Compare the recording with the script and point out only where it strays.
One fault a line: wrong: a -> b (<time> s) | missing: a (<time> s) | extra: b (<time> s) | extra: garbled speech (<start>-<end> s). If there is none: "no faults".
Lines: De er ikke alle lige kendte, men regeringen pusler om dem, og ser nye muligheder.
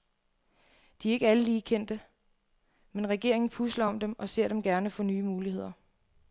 extra: dem gerne få (4.5 s)